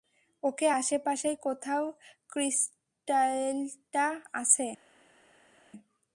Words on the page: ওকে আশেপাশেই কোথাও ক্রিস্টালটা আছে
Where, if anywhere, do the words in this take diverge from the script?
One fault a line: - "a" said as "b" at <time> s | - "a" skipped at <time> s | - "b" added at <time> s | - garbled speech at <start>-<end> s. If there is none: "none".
none